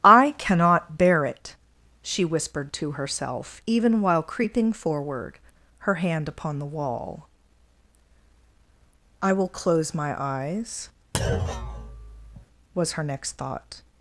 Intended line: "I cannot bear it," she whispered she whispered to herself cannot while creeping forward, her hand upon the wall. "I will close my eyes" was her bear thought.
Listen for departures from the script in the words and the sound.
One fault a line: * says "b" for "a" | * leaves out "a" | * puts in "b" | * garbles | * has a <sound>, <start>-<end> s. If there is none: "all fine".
* leaves out "she whispered"
* says "even" for "cannot"
* has a thud, 11.1-12.5 s
* says "next" for "bear"